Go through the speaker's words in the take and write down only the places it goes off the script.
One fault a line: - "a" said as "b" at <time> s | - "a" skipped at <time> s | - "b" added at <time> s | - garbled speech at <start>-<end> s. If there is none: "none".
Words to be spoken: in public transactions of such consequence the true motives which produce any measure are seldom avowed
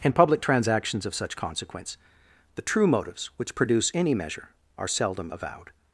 none